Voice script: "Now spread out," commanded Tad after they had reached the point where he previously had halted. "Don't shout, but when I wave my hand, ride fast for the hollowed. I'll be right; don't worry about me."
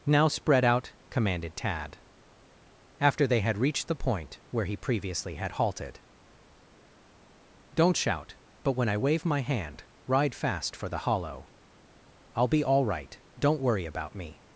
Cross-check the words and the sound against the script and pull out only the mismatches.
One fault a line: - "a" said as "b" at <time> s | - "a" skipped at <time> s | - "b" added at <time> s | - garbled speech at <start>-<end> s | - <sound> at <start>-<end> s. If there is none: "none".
- "hollowed" said as "hollow" at 11.0 s
- "all" added at 12.6 s